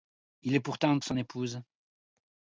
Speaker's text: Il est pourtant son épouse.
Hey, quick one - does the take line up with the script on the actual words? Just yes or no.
yes